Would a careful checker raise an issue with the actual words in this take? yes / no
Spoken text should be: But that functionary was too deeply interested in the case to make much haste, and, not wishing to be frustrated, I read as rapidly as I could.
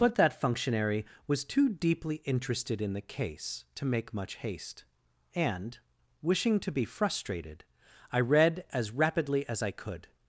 yes